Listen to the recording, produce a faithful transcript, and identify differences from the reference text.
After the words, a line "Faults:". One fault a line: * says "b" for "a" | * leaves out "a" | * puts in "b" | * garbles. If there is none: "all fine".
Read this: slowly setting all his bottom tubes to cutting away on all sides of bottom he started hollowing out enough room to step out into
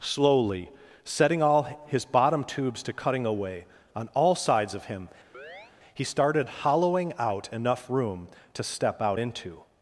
slowly setting all his bottom tubes to cutting away on all sides of him he started hollowing out enough room to step out into
Faults:
* says "him" for "bottom"